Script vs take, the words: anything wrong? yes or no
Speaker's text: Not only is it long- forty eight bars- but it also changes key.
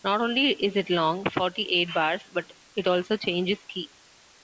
no